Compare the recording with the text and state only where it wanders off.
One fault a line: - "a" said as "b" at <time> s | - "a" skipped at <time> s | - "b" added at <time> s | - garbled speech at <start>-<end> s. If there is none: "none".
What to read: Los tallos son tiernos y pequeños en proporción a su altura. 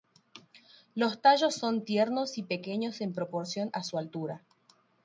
none